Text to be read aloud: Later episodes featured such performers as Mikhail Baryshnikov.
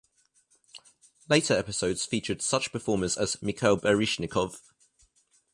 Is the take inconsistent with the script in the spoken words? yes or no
no